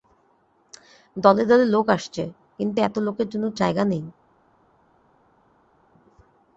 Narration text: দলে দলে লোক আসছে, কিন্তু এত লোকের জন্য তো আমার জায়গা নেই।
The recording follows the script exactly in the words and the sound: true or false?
false